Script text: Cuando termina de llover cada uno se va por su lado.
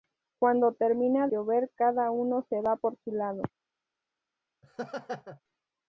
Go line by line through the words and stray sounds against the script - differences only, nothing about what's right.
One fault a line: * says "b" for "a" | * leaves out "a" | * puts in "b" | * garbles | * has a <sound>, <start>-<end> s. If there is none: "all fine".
* leaves out "de"
* has a laugh, 4.6-5.4 s